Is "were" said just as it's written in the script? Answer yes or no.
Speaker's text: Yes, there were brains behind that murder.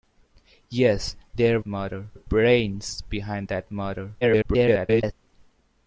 no